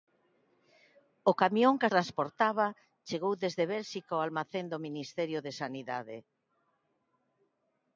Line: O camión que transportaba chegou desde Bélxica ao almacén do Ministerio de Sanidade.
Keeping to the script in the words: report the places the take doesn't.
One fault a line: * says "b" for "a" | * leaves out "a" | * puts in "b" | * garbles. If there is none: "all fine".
all fine